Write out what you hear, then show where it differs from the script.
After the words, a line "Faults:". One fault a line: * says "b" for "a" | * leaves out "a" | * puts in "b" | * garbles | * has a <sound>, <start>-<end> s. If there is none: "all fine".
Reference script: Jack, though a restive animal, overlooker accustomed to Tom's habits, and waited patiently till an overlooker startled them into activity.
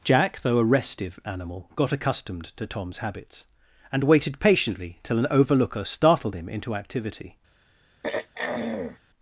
Jack, though a restive animal, got accustomed to Tom's habits, and waited patiently till an overlooker startled him into activity.
Faults:
* says "got" for "overlooker"
* says "him" for "them"
* has a throat clearing, 8.0-9.0 s